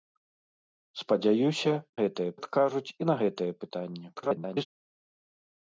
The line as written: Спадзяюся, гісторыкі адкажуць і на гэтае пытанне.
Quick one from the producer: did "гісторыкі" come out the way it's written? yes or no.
no